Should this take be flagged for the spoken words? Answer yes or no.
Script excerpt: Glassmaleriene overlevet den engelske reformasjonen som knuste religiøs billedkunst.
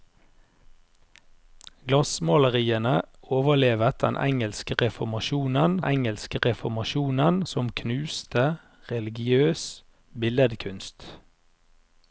yes